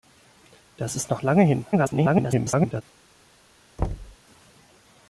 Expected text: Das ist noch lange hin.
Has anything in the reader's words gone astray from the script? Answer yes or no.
yes